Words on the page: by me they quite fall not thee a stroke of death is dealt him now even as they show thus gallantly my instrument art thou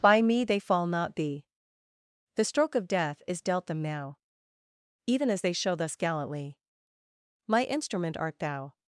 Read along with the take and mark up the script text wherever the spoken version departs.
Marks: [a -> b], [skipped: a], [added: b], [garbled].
by me they [skipped: quite] fall not thee [a -> the] stroke of death is dealt [him -> them] now even as they show thus gallantly my instrument art thou